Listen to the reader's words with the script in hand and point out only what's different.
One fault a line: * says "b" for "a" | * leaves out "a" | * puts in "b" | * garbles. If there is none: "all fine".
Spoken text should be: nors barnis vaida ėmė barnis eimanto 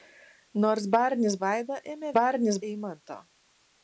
all fine